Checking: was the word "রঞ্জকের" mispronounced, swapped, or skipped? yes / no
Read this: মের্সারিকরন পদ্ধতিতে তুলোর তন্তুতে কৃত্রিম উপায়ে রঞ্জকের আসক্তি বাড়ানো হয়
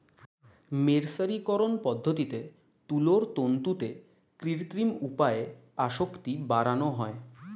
yes